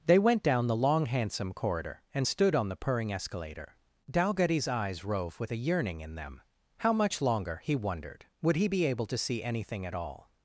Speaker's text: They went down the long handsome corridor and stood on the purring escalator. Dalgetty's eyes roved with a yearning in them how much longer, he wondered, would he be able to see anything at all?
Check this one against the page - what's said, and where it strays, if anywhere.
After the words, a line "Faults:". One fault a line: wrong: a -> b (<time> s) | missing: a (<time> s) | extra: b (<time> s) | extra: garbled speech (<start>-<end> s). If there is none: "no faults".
They went down the long handsome corridor and stood on the purring escalator. Dalgetty's eyes rove with a yearning in them how much longer, he wondered, would he be able to see anything at all?
Faults:
wrong: roved -> rove (5.0 s)